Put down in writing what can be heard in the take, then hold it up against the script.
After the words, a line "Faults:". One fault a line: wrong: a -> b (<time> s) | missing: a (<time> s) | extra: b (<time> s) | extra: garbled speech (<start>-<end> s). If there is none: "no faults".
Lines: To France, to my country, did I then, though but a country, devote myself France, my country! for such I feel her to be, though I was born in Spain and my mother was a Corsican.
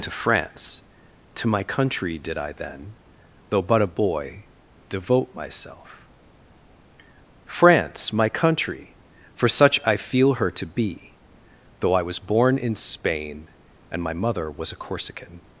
To France, to my country, did I then, though but a boy, devote myself France, my country! for such I feel her to be, though I was born in Spain and my mother was a Corsican.
Faults:
wrong: country -> boy (3.9 s)